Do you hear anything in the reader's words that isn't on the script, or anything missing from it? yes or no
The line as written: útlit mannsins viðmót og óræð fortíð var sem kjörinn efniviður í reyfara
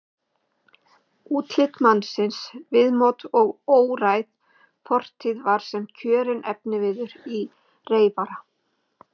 no